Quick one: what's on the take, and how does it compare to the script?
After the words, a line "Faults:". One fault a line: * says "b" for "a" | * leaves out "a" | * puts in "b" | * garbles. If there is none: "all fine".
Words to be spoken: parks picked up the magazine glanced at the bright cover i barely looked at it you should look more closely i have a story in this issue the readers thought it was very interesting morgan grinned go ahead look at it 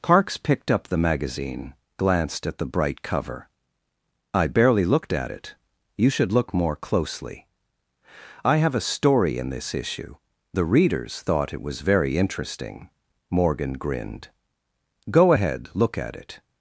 parks picked up the magazine glanced at the bright cover i barely looked at it you should look more closely i have a story in this issue the readers thought it was very interesting morgan grinned go ahead look at it
Faults:
all fine